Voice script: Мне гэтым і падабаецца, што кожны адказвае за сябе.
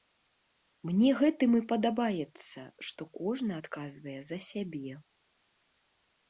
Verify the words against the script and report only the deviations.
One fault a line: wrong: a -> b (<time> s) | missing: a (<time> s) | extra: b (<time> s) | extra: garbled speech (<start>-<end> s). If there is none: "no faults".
no faults